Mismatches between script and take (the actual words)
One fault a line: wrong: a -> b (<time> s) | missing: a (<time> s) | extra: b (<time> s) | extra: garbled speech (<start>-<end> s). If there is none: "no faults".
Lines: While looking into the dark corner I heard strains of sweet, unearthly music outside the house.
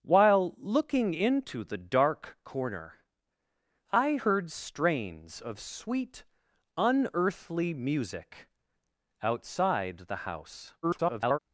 extra: garbled speech (10.8-11.4 s)